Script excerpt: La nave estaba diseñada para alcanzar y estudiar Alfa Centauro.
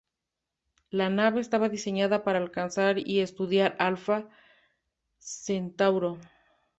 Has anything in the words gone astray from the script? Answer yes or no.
no